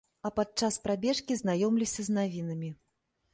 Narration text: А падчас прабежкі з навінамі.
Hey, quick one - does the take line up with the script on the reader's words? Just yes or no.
no